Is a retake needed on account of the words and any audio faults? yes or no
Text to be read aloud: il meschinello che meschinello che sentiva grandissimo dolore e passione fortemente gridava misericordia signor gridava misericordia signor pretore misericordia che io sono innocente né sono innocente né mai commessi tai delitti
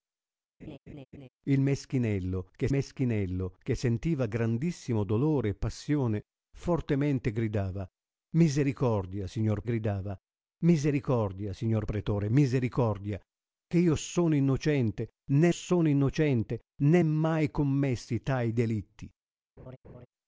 yes